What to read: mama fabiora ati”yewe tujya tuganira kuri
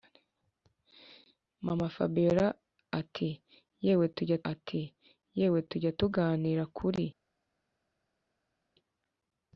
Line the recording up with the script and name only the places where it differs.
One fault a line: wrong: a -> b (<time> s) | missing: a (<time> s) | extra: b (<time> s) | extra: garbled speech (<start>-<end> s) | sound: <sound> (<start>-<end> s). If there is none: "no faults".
extra: ati”yewe tujya (4.5 s)